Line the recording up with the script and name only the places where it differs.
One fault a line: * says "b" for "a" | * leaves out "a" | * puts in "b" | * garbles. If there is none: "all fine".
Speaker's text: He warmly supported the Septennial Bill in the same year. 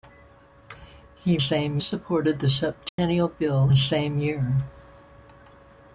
* says "same" for "warmly"
* leaves out "in"